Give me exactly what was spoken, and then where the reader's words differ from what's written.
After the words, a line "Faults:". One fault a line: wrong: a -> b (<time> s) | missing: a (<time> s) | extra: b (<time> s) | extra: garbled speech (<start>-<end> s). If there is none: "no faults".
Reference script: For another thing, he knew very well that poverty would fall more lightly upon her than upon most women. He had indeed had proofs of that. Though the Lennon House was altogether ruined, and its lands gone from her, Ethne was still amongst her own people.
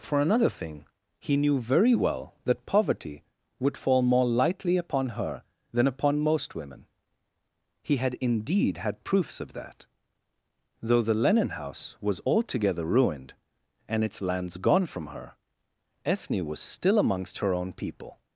For another thing, he knew very well that poverty would fall more lightly upon her than upon most women. He had indeed had proofs of that. Though the Lennon House was altogether ruined, and its lands gone from her, Ethne was still amongst her own people.
Faults:
no faults